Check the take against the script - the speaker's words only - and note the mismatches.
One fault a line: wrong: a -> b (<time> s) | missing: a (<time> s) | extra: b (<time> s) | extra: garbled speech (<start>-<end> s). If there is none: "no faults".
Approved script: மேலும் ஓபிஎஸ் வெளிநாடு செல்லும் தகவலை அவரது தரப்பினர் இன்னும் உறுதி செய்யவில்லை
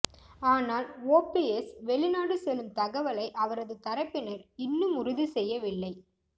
wrong: மேலும் -> ஆனால் (0.4 s)